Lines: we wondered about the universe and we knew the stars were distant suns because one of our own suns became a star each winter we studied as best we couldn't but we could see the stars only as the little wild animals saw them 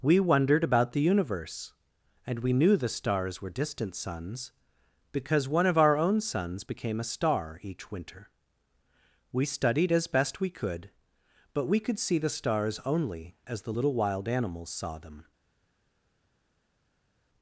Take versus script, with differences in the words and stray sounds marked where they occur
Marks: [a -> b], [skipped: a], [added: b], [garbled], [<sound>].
we wondered about the universe and we knew the stars were distant suns because one of our own suns became a star each winter we studied as best we [couldn't -> could] but we could see the stars only as the little wild animals saw them